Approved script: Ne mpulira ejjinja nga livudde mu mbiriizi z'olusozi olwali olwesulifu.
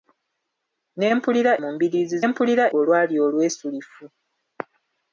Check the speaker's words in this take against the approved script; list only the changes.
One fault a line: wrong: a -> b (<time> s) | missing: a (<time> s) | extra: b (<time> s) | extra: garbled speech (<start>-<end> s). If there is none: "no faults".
missing: ejjinja nga livudde (1.5 s)
wrong: z'olusozi -> mpulira (2.3 s)